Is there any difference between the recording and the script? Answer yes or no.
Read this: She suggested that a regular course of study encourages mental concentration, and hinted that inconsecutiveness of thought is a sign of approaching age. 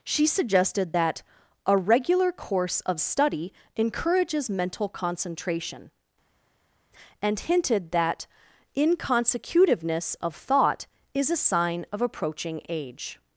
no